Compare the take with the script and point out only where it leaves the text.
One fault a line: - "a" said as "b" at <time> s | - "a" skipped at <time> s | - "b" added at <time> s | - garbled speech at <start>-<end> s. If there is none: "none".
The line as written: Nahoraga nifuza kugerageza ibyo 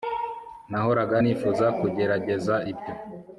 none